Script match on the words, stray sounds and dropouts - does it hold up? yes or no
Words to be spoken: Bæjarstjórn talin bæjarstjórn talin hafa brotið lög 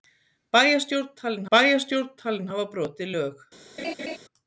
no